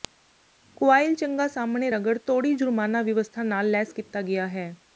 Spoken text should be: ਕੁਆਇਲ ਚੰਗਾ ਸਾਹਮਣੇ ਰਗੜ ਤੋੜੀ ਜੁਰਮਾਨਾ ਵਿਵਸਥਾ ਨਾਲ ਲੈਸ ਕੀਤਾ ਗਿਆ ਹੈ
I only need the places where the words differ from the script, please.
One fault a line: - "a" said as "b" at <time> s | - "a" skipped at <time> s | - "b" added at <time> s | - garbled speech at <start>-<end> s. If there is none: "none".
none